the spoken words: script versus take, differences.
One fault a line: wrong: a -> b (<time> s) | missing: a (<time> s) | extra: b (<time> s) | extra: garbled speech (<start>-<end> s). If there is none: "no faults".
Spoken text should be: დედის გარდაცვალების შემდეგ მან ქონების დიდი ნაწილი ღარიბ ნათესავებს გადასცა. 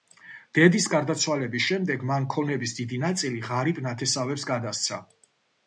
no faults